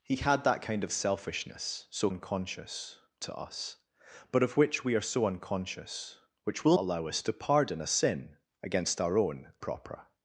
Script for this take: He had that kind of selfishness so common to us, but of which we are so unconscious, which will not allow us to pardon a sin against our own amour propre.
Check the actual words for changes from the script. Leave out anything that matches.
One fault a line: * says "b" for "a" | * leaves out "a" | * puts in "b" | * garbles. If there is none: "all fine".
* says "unconscious" for "common"
* leaves out "not"
* leaves out "amour"